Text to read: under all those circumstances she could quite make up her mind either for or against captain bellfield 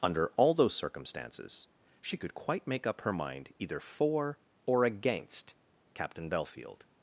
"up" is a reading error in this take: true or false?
false